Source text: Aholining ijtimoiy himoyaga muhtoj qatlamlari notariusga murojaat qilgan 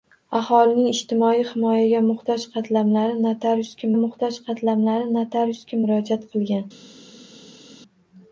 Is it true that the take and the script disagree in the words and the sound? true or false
true